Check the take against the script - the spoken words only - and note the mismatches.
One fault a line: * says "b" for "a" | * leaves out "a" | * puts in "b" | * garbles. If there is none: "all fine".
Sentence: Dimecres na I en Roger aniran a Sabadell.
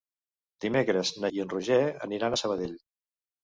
all fine